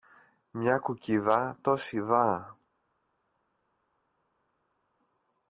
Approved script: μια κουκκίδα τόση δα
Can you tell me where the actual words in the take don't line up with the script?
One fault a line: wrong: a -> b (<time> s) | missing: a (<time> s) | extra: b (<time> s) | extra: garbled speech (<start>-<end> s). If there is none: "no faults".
no faults